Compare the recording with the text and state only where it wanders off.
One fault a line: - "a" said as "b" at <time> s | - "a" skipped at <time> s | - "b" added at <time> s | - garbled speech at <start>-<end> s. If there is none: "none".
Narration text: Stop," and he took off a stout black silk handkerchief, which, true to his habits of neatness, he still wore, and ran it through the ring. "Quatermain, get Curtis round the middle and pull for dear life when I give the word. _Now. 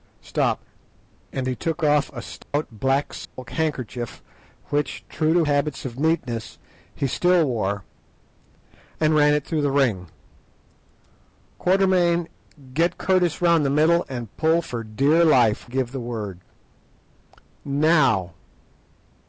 - "his" skipped at 5.5 s
- "when I" skipped at 15.7 s